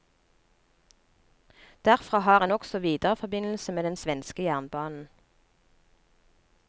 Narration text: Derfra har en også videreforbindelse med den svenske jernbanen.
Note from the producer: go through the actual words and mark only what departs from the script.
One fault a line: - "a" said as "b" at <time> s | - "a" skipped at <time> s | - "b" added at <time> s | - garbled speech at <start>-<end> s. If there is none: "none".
none